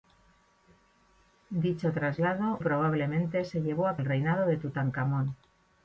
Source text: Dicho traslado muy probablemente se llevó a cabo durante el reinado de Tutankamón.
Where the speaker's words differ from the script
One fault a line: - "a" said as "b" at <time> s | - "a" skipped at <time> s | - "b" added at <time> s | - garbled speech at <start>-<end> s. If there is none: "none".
- "muy" skipped at 2.6 s
- "cabo durante" skipped at 4.0 s